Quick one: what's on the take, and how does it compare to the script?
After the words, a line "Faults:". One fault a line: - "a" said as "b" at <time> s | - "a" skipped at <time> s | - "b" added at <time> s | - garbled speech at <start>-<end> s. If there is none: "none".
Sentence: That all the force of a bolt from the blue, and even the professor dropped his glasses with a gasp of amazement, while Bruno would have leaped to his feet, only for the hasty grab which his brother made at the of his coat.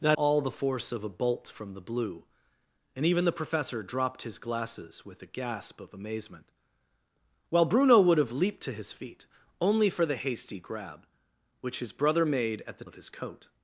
That all the force of a bolt from the blue, and even the professor dropped his glasses with a gasp of amazement, while Bruno would have leaped to his feet, only for the hasty grab which his brother made at the of his coat.
Faults:
none